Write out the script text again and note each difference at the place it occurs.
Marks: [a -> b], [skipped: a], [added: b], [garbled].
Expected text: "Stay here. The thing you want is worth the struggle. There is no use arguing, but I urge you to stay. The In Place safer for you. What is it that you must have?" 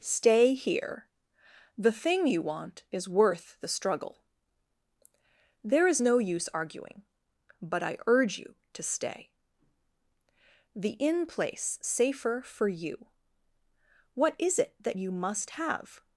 "Stay here. The thing you want is worth the struggle. There is no use arguing, but I urge you to stay. The In Place safer for you. What is it that you must have?"